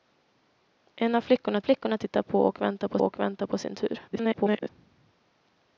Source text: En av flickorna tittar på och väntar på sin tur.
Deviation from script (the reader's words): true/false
true